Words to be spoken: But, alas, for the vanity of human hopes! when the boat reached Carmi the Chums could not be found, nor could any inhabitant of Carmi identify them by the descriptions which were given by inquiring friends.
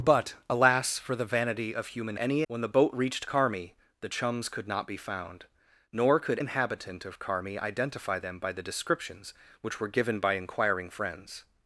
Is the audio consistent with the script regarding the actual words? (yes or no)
no